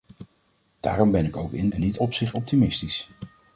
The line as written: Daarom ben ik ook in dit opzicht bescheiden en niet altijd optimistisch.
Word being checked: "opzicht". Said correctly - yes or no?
no